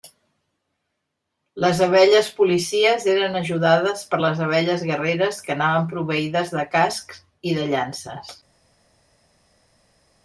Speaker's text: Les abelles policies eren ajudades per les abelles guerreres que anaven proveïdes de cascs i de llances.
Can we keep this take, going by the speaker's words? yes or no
yes